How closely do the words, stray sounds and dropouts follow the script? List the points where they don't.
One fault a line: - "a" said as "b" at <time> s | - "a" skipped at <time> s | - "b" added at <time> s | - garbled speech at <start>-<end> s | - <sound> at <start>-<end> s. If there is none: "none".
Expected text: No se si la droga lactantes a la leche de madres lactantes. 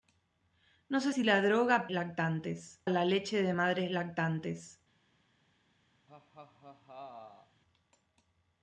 - laugh at 6.1-7.6 s